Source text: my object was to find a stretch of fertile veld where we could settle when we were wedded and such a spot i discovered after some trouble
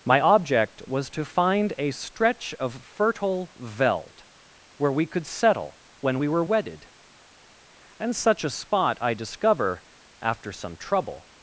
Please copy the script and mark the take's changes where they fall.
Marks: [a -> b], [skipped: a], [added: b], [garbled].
my object was to find a stretch of fertile veld where we could settle when we were wedded and such a spot i [discovered -> discover] after some trouble